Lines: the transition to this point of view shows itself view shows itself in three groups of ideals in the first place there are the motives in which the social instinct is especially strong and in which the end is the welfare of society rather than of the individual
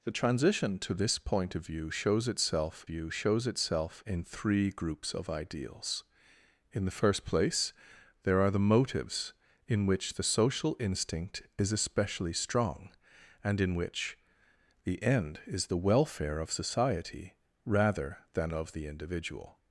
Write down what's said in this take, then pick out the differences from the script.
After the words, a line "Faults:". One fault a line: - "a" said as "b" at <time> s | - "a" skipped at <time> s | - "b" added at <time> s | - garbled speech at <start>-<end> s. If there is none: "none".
the transition to this point of view shows itself view shows itself in three groups of ideals in the first place there are the motives in which the social instinct is especially strong and in which the end is the welfare of society rather than of the individual
Faults:
none